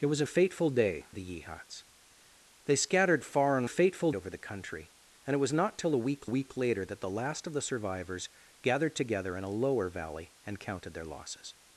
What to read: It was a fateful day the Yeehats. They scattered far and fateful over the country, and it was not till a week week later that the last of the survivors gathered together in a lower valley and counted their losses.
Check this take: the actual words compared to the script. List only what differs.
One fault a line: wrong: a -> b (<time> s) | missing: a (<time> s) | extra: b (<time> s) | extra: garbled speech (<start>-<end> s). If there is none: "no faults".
no faults